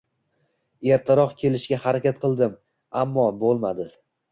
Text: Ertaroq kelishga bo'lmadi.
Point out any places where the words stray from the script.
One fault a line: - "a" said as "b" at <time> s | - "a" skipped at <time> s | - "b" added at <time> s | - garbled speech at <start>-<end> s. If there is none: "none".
- "harakat qildim ammo" added at 1.9 s